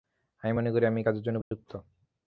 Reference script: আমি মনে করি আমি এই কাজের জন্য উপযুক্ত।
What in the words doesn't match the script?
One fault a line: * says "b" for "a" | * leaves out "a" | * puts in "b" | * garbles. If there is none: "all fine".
all fine